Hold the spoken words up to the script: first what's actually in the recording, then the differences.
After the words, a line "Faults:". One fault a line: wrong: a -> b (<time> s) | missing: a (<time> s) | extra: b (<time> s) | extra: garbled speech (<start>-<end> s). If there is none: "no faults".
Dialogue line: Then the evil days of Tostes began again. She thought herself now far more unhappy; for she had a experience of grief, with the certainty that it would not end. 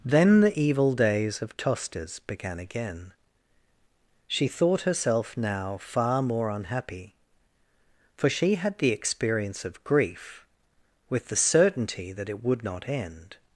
Then the evil days of Tostes began again. She thought herself now far more unhappy; for she had the experience of grief, with the certainty that it would not end.
Faults:
wrong: a -> the (8.8 s)